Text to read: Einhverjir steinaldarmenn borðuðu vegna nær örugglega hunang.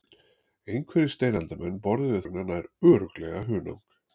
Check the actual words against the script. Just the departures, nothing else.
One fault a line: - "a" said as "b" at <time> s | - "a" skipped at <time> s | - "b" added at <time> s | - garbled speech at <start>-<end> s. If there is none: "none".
none